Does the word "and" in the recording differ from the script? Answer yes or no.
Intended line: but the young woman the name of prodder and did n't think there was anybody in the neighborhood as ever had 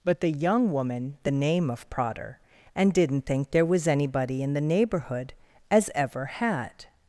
no